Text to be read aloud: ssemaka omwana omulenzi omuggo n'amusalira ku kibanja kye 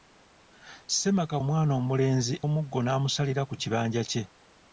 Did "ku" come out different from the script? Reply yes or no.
no